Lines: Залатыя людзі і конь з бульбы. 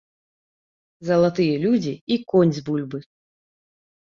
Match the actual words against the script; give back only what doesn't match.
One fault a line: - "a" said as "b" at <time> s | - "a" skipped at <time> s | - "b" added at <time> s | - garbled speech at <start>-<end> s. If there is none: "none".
none